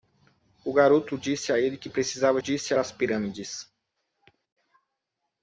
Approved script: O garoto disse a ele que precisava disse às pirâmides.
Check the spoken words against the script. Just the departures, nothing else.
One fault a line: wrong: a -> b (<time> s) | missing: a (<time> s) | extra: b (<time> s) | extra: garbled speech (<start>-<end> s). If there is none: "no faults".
no faults